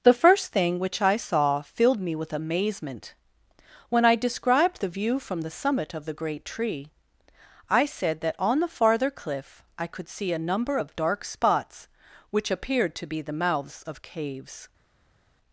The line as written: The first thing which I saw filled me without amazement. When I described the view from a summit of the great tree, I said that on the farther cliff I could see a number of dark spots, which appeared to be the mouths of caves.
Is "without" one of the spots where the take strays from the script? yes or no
yes